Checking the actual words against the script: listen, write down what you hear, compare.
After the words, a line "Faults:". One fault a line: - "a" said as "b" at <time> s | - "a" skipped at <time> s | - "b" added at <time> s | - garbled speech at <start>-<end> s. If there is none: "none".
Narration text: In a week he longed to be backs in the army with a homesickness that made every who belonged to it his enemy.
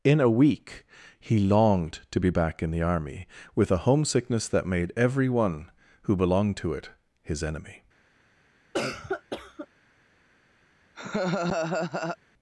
In a week he longed to be back in the army with a homesickness that made every one who belonged to it his enemy.
Faults:
- "backs" said as "back" at 2.3 s
- "one" added at 5.3 s